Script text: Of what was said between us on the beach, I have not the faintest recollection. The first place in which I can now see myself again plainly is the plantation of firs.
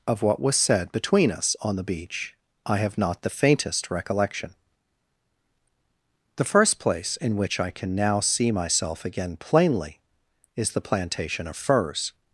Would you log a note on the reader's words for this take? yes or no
no